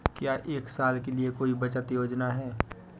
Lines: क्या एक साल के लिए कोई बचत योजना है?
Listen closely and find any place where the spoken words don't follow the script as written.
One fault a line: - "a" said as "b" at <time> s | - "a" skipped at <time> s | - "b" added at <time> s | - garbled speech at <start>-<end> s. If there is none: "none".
none